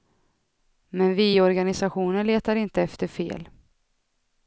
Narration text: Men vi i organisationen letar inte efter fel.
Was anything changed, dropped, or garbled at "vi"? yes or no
no